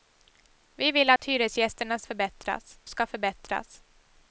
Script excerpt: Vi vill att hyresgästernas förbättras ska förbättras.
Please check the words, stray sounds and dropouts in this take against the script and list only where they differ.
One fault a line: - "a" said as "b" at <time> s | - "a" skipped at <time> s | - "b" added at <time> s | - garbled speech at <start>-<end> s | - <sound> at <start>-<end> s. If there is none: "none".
- dropout at 1.2-1.2 s